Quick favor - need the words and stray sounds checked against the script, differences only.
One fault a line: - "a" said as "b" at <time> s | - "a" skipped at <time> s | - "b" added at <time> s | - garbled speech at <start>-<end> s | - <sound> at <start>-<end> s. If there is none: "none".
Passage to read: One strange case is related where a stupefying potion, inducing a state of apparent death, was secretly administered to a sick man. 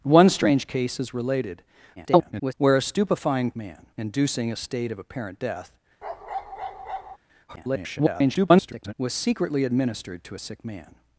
- garbled speech at 2.0-2.5 s
- "potion" said as "man" at 3.6 s
- bark at 6.0-7.2 s
- garbled speech at 7.5-8.9 s